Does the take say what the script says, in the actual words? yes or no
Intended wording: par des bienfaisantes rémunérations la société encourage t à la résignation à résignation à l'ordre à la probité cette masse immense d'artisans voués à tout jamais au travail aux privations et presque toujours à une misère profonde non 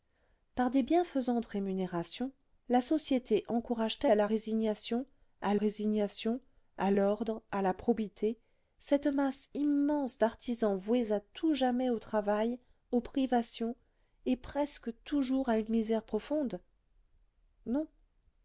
yes